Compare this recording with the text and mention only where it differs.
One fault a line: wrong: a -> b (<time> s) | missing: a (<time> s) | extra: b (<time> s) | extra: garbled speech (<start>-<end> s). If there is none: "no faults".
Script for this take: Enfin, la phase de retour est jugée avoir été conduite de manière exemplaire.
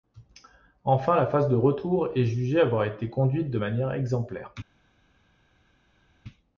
no faults